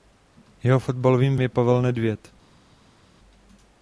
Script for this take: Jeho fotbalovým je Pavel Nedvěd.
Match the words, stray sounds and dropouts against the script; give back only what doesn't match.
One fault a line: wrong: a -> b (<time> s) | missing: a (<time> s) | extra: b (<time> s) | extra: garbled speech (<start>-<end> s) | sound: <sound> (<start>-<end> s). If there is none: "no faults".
no faults